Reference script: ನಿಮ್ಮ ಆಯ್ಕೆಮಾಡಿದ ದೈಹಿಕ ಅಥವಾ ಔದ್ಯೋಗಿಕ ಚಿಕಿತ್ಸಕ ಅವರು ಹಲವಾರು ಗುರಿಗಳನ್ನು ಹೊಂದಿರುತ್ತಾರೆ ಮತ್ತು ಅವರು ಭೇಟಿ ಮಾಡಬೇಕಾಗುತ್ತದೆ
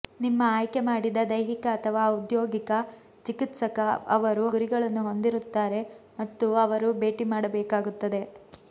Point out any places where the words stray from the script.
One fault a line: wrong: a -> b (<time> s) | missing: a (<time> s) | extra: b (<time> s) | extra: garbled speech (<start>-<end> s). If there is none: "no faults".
missing: ಹಲವಾರು (4.5 s)